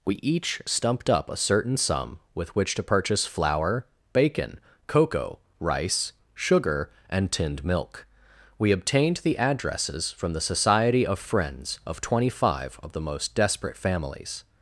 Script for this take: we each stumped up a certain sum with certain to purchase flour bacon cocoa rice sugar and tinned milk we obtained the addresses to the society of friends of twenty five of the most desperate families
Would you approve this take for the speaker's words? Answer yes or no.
no